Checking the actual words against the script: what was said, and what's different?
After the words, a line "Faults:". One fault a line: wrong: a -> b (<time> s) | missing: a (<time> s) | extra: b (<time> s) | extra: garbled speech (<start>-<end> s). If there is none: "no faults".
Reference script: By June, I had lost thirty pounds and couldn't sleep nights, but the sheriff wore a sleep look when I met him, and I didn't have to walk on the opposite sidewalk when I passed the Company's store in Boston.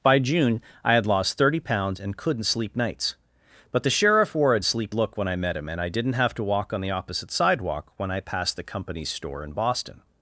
By June, I had lost thirty pounds and couldn't sleep nights, but the sheriff wore a sleep look when I met him, and I didn't have to walk on the opposite sidewalk when I passed the Company's store in Boston.
Faults:
no faults